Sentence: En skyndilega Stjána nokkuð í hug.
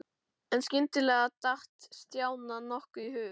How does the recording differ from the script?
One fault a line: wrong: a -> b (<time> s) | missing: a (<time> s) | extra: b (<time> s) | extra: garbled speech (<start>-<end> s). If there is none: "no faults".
extra: datt (1.5 s)